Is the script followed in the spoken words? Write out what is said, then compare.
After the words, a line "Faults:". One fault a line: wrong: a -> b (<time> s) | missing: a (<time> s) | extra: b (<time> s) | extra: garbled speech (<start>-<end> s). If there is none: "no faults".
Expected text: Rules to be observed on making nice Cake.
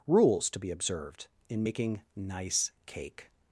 Rules to be observed in making nice Cake.
Faults:
wrong: on -> in (1.5 s)